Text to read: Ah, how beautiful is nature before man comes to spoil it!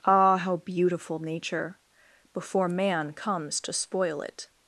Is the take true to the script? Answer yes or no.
no